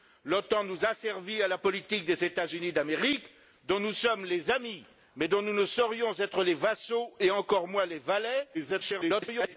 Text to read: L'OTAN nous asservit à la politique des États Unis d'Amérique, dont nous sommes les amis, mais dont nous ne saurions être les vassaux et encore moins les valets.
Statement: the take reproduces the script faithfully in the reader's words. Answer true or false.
false